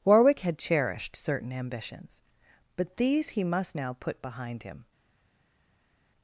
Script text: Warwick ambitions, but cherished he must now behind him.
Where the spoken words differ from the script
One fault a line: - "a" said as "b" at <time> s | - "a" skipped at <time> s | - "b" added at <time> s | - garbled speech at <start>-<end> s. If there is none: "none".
- "had cherished certain" added at 0.4 s
- "cherished" said as "these" at 3.0 s
- "put" added at 4.0 s